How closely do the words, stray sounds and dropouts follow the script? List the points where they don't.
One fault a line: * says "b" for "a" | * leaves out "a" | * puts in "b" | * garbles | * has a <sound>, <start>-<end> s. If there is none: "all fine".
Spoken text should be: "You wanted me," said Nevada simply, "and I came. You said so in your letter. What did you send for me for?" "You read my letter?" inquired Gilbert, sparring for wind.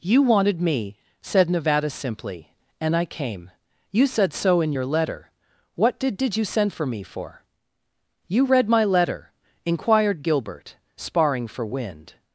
* puts in "did"